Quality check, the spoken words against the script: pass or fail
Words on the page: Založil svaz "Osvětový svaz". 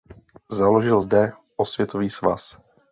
fail